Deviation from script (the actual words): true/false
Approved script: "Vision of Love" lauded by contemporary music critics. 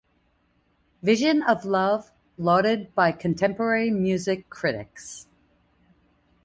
false